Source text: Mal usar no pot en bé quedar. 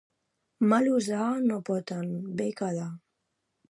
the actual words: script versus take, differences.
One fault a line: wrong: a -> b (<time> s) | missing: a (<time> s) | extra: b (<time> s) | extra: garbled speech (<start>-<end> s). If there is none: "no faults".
no faults